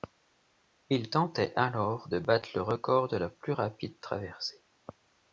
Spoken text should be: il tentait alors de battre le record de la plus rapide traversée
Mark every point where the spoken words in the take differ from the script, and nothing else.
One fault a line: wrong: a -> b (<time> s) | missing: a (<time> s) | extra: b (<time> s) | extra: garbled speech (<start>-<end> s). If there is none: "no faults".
no faults